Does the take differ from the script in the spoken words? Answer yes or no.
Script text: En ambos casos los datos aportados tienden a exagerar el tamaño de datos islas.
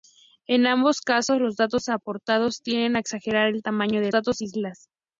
no